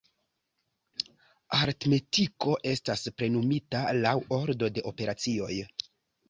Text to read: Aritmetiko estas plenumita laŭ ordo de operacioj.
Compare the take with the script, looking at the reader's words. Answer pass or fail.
pass